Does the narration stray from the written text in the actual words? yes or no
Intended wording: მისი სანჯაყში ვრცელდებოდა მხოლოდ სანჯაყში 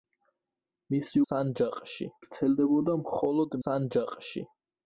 no